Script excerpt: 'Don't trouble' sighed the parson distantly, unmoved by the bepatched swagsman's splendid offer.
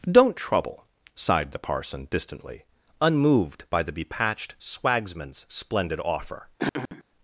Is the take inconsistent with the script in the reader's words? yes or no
no